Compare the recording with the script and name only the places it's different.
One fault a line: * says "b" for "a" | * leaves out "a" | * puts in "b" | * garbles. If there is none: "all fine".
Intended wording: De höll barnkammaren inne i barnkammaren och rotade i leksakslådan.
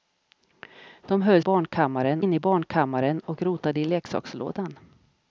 all fine